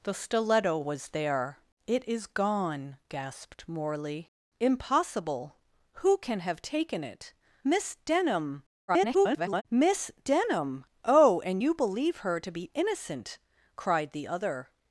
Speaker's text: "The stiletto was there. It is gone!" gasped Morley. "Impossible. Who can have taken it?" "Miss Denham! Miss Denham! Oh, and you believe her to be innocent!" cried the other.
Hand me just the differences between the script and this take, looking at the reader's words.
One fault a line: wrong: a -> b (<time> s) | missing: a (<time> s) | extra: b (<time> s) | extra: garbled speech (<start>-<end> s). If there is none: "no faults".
extra: garbled speech (8.9-9.6 s)